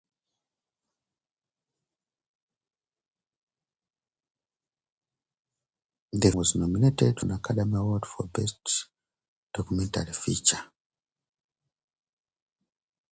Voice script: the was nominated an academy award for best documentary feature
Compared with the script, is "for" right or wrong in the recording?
right